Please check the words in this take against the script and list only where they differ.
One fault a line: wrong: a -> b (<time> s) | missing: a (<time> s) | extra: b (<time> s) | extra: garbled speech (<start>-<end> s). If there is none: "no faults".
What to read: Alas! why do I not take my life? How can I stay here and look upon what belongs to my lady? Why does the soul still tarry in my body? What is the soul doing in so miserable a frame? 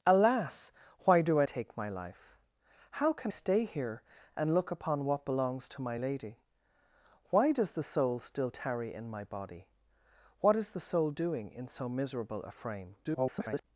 missing: not (1.4 s)
missing: I (3.3 s)
extra: garbled speech (13.0-13.6 s)